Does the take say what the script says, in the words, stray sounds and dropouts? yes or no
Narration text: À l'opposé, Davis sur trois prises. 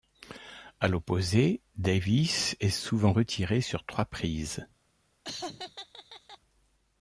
no